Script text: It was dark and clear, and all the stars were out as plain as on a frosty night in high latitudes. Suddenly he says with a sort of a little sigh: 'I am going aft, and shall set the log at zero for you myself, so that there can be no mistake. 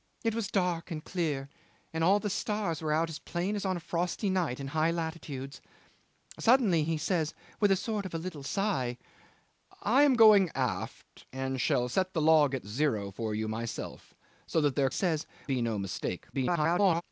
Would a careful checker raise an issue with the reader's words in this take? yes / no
yes